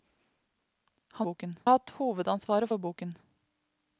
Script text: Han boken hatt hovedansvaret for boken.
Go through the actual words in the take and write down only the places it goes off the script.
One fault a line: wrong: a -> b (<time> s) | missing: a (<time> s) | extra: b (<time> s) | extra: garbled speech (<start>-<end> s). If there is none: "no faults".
no faults